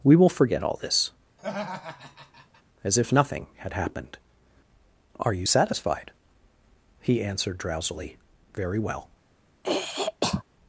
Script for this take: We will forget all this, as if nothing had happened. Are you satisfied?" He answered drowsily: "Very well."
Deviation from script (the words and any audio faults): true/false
true